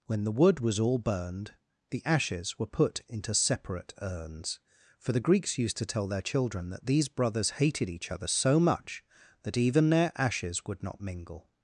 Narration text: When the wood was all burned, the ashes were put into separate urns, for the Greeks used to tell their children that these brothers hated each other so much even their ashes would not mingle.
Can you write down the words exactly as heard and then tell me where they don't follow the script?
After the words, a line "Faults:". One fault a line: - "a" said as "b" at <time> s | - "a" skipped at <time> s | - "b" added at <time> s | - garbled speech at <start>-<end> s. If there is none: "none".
When the wood was all burned, the ashes were put into separate urns, for the Greeks used to tell their children that these brothers hated each other so much that even their ashes would not mingle.
Faults:
- "that" added at 9.4 s